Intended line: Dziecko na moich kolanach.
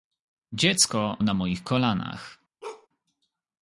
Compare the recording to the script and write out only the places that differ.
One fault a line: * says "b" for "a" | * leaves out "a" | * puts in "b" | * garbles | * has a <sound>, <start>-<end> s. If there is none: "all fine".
* has a bark, 2.6-2.9 s